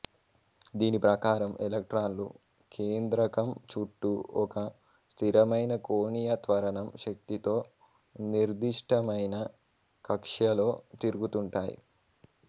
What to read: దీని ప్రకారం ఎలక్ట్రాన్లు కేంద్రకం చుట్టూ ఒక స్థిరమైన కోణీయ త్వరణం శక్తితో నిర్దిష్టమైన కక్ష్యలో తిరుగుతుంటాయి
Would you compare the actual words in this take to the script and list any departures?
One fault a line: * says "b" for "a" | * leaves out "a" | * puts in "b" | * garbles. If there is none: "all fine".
all fine